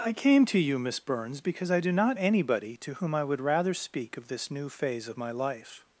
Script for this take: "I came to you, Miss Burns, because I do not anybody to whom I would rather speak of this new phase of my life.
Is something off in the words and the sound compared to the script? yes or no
no